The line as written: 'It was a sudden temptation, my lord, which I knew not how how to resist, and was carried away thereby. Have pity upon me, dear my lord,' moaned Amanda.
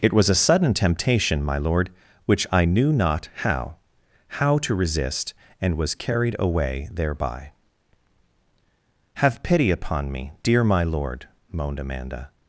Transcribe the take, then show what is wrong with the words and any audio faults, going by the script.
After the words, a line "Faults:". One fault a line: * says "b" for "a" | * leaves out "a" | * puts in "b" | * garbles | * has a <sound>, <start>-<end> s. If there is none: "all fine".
'It was a sudden temptation, my lord, which I knew not how how to resist, and was carried away thereby. Have pity upon me, dear my lord,' moaned Amanda.
Faults:
all fine